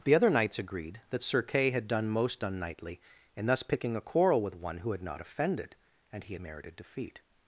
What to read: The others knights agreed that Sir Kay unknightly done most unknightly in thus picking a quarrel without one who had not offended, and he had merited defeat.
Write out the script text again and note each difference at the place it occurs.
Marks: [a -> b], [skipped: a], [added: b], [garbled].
The [others -> other] knights agreed that Sir Kay [unknightly -> had] done most unknightly in thus picking a quarrel [without -> with] one who had not offended, and he had merited defeat.